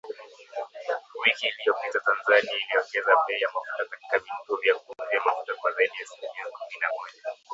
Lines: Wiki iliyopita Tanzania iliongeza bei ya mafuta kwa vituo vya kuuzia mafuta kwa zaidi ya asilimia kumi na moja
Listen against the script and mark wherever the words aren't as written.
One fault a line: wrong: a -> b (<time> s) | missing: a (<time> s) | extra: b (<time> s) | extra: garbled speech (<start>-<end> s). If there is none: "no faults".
wrong: kwa -> katika (3.9 s)